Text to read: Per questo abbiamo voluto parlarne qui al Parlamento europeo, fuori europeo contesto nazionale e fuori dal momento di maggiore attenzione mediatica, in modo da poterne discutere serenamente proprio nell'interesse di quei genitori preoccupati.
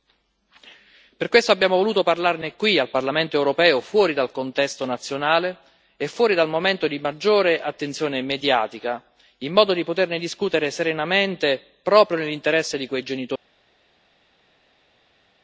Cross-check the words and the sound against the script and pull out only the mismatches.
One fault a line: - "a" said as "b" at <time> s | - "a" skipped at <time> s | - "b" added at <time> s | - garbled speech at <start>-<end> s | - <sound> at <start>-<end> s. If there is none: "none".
- "europeo" said as "dal" at 4.1 s